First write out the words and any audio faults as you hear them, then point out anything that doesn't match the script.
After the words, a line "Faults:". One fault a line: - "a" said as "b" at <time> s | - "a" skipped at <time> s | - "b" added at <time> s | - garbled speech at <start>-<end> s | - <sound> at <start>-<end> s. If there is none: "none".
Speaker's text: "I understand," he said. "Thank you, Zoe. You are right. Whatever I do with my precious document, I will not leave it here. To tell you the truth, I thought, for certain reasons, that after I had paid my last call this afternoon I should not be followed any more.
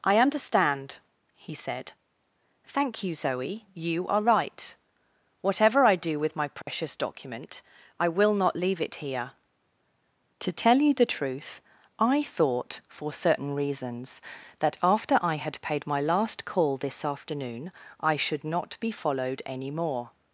"I understand," he said. "Thank you, Zoe. You are right. Whatever I do with my precious document, I will not leave it here. To tell you the truth, I thought, for certain reasons, that after I had paid my last call this afternoon I should not be followed any more.
Faults:
- dropout at 6.6-6.7 s